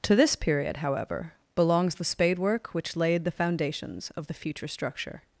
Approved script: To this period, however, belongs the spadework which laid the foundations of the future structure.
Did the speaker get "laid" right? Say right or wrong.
right